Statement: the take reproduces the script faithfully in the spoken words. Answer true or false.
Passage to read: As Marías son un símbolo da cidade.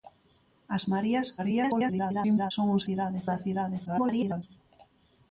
false